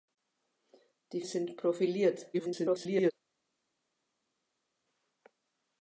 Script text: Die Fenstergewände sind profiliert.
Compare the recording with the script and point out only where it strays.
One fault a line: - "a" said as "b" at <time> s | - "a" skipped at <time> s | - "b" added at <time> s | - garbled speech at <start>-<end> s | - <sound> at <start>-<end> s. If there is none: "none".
- "Fenstergewände" skipped at 1.2 s
- garbled speech at 2.3-3.1 s